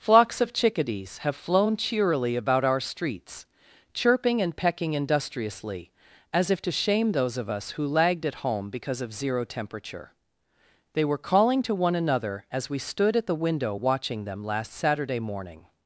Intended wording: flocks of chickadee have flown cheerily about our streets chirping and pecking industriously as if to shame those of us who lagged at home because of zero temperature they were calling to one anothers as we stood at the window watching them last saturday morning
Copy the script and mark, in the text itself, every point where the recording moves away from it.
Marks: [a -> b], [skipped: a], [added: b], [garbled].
flocks of [chickadee -> chickadees] have flown cheerily about our streets chirping and pecking industriously as if to shame those of us who lagged at home because of zero temperature they were calling to one [anothers -> another] as we stood at the window watching them last saturday morning